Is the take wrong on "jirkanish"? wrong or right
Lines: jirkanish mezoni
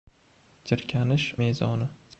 right